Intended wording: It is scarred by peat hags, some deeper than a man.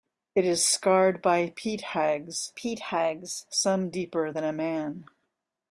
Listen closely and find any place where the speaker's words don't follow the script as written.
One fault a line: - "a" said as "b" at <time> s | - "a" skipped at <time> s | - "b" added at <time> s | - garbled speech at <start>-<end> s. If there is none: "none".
- "peat hags" added at 2.5 s